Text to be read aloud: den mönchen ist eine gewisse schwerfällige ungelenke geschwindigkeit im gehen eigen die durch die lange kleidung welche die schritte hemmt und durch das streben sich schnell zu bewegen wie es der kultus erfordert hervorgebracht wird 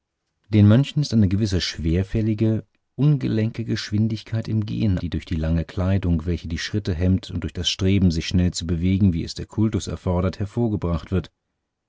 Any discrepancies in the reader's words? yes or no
yes